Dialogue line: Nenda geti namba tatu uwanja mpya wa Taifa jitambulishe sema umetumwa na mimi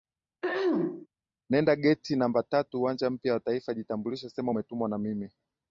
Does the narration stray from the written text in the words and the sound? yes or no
yes